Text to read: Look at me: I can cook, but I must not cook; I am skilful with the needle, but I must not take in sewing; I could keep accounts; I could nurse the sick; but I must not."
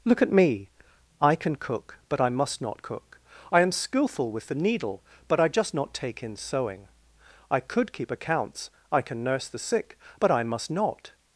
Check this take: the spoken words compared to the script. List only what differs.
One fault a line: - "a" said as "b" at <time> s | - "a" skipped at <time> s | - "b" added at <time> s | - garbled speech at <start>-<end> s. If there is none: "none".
- "must" said as "just" at 5.5 s
- "could" said as "can" at 9.0 s